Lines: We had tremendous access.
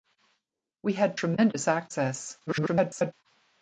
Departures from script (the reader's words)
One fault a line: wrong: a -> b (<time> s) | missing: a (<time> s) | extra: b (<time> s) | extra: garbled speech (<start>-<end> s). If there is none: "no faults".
extra: garbled speech (2.5-3.1 s)